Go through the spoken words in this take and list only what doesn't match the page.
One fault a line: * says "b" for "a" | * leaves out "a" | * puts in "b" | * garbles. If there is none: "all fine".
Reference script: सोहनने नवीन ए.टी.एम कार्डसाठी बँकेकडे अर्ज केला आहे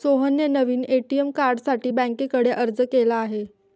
all fine